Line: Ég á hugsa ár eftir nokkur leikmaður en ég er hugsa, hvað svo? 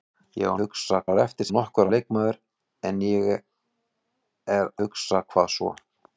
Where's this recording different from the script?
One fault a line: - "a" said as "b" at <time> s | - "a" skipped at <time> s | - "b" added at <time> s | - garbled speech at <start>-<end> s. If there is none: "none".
none